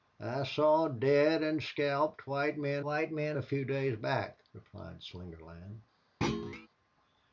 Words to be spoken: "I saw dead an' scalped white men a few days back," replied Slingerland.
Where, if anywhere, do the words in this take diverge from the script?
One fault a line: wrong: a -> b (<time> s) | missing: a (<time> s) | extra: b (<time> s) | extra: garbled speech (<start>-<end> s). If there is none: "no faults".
extra: white men (2.8 s)